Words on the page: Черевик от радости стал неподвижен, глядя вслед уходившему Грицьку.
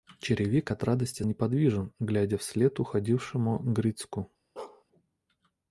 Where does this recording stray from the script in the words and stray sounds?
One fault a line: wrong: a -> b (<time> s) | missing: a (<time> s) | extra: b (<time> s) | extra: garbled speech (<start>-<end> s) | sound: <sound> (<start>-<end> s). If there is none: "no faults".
missing: стал (1.2 s)
sound: bark (4.6-4.8 s)